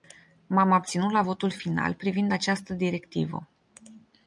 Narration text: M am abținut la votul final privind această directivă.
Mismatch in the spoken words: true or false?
false